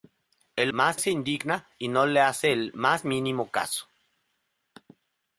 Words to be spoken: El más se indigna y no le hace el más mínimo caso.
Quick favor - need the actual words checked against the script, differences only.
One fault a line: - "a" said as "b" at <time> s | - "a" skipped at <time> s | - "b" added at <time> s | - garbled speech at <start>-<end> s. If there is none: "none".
none